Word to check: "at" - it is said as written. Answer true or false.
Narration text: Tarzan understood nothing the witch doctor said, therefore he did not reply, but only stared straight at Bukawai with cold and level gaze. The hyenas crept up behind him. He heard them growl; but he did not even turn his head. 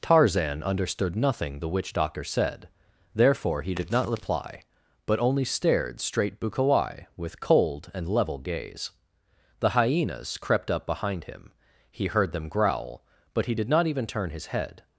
false